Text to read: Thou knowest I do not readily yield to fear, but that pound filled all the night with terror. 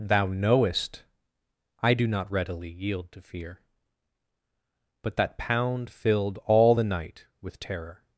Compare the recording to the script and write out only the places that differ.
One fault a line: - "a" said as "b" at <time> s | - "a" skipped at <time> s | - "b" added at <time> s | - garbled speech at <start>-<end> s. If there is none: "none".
none